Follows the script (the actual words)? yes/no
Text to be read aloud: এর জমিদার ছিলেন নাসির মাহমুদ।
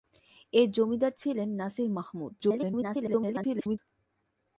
no